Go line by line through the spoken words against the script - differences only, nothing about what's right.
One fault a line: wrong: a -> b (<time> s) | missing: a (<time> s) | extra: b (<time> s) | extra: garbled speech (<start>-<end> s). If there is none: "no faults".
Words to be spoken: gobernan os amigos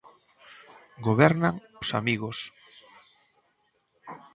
no faults